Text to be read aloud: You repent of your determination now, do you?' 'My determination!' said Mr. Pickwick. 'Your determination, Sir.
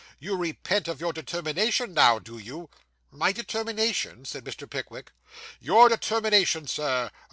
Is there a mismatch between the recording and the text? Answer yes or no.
no